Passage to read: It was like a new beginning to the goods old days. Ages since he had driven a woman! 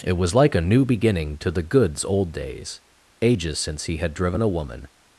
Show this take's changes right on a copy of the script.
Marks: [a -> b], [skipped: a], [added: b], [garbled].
It was like a new beginning to the goods old days. Ages since he had driven a woman!